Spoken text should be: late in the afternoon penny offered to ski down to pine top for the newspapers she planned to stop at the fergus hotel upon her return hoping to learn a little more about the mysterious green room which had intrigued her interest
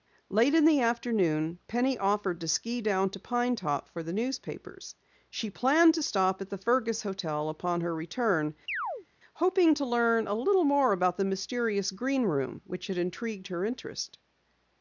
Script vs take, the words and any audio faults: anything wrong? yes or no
yes